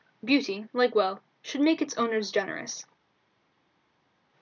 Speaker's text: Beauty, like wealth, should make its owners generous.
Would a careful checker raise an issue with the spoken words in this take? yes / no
no